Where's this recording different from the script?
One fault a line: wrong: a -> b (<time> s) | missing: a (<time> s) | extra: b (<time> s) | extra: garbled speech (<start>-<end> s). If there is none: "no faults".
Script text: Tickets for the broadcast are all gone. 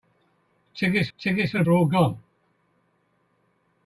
extra: tickets (1.2 s)
missing: broadcast (1.6 s)